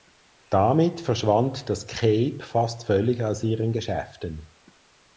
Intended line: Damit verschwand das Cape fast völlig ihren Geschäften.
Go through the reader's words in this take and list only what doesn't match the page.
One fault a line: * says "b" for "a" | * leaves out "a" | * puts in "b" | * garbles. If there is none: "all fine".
* puts in "aus"